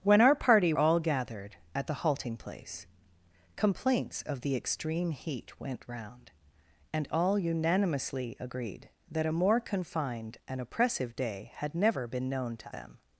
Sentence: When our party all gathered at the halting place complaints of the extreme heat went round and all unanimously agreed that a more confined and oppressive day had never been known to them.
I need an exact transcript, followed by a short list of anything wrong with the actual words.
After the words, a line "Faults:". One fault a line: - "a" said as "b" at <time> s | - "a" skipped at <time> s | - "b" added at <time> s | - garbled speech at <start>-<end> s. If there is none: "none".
When our party all gathered at the halting place complaints of the extreme heat went round and all unanimously agreed that a more confined and oppressive day had never been known to them.
Faults:
none